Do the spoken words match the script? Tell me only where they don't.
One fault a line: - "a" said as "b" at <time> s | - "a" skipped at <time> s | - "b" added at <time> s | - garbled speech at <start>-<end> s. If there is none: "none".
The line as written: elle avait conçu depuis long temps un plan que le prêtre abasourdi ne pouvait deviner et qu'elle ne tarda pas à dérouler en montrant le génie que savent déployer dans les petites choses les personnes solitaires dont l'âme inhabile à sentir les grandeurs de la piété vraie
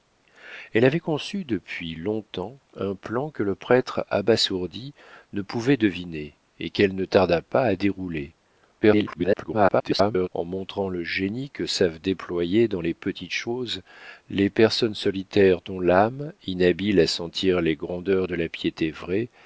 - garbled speech at 8.8-10.3 s